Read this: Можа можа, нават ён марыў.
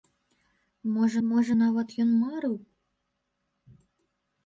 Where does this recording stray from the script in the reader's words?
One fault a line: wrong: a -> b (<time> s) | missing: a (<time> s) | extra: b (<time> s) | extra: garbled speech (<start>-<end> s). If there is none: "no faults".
no faults